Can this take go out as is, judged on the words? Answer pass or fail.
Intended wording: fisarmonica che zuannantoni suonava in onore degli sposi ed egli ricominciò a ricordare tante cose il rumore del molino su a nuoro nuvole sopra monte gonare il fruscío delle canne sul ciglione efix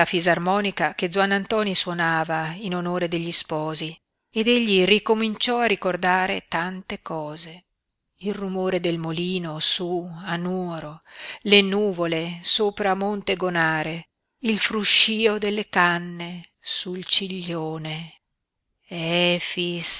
fail